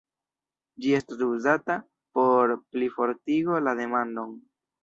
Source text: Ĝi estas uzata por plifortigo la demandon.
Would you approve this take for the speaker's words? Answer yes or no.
yes